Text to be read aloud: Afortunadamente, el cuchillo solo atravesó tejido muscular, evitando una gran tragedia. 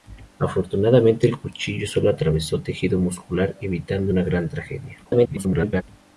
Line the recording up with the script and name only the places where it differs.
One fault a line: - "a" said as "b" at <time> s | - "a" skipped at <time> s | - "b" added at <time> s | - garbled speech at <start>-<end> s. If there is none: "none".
- garbled speech at 5.0-5.8 s